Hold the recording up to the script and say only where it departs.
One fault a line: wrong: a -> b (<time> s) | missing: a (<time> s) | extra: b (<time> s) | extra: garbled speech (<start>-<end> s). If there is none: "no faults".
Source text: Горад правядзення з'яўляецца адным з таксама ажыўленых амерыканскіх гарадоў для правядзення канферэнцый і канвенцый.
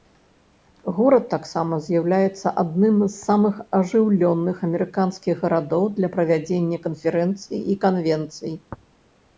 wrong: правядзення -> таксама (1.3 s)
wrong: таксама -> самых (3.3 s)